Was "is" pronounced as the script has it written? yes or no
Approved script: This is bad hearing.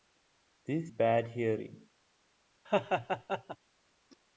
no